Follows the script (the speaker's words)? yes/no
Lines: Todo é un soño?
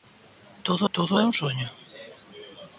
no